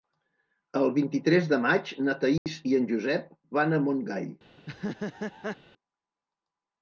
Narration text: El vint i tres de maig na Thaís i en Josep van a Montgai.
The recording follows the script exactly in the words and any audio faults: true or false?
false